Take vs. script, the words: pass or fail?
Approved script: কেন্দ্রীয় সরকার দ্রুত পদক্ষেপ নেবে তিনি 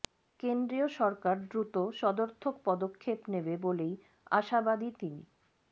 fail